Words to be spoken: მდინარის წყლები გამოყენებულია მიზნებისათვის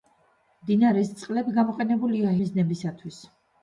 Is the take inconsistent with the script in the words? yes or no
no